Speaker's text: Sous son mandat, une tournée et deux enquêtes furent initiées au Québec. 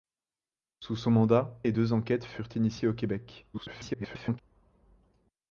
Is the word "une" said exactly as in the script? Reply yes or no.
no